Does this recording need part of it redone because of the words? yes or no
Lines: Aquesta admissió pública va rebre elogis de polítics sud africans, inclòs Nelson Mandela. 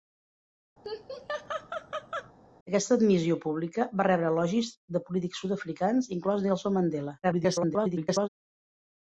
yes